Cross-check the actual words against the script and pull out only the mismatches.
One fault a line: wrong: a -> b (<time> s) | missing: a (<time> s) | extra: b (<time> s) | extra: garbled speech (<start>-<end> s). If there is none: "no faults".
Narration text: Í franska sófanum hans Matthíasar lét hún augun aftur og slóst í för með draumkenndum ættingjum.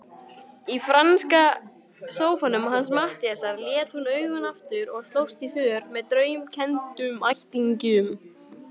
no faults